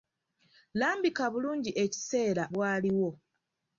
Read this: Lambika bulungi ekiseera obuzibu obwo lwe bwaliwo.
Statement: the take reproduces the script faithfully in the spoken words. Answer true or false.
false